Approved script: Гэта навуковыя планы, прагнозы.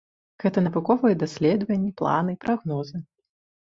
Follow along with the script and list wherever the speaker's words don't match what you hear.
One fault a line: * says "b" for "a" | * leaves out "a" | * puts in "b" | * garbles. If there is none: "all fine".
* puts in "даследаванні"